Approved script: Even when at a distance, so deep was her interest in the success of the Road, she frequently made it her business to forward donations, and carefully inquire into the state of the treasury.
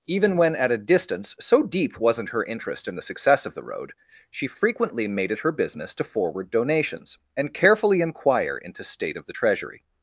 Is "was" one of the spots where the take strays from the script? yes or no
yes